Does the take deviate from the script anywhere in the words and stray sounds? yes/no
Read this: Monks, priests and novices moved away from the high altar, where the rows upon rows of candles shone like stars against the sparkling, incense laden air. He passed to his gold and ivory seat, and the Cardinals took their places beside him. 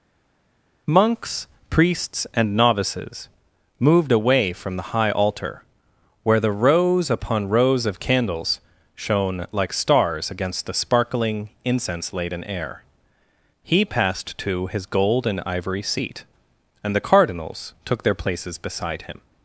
no